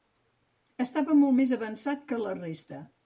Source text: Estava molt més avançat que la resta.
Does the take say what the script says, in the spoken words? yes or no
yes